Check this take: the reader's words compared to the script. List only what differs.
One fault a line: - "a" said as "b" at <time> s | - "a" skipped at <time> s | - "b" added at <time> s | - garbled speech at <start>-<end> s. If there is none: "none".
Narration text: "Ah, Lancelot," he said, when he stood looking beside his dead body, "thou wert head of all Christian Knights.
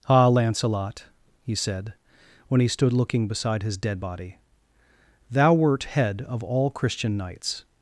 none